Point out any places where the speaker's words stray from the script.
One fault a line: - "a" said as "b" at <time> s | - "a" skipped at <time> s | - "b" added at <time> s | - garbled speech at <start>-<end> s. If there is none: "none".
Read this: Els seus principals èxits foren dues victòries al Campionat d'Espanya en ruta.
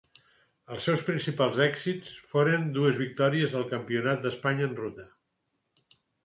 none